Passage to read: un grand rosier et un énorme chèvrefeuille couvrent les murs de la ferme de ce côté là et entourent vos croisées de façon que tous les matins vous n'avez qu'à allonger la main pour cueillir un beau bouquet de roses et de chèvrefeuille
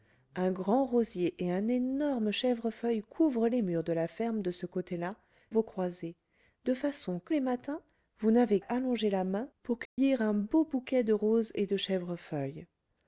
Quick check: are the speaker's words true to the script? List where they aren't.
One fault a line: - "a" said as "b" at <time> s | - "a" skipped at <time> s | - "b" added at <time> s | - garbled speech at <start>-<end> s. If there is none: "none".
- "et entourent" skipped at 5.2 s
- "tous" skipped at 7.3 s
- "qu'à" skipped at 8.6 s